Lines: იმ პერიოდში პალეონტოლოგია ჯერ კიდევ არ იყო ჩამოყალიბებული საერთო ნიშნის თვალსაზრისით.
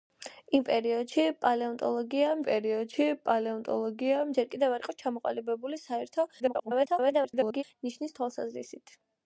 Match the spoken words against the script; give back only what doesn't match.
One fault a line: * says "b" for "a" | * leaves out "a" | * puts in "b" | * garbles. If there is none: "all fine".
* puts in "პერიოდში პალეონტოლოგია"
* garbles